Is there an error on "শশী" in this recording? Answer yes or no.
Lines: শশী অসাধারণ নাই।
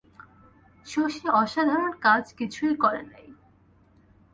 no